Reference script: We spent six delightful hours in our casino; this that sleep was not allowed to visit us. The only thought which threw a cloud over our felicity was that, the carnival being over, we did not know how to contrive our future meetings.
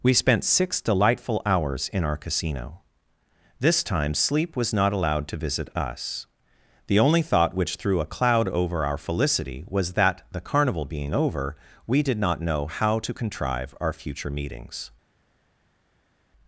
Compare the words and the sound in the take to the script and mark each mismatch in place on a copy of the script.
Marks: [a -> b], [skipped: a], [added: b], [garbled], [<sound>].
We spent six delightful hours in our casino; this [that -> time] sleep was not allowed to visit us. The only thought which threw a cloud over our felicity was that, the carnival being over, we did not know how to contrive our future meetings.